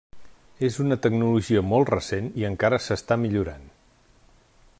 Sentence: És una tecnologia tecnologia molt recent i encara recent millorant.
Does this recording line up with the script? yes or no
no